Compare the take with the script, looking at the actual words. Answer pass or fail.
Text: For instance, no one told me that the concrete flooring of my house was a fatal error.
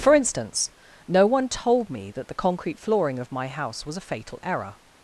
pass